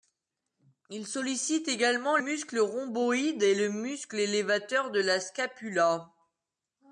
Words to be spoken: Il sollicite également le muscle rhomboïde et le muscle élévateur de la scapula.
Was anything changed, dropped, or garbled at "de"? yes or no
no